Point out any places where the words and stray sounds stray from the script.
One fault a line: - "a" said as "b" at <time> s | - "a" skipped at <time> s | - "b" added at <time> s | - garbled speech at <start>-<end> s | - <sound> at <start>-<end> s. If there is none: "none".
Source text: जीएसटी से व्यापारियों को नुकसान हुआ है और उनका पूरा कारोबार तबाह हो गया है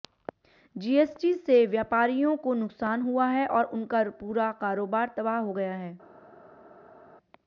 none